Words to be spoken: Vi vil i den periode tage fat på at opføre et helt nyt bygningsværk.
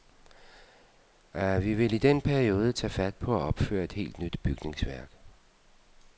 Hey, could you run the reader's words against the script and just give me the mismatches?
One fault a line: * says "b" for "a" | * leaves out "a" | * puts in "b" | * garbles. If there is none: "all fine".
all fine